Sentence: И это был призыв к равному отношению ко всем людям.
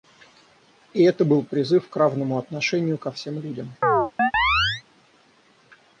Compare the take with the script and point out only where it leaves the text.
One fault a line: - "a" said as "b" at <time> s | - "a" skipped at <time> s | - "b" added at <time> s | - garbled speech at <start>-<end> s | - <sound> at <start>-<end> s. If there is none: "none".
- chirp at 3.8-4.8 s